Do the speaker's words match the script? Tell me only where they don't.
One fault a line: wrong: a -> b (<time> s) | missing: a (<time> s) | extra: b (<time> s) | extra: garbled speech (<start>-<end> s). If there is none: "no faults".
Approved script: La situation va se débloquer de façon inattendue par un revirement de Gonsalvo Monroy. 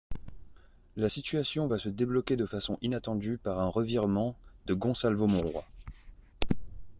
no faults